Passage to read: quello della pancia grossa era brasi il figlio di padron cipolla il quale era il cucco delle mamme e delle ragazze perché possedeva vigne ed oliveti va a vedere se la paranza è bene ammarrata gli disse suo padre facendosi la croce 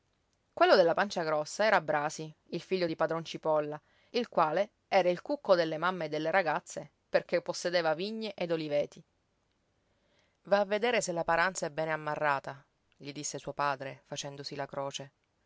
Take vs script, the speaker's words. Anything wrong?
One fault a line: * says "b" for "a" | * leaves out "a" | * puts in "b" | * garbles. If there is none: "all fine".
all fine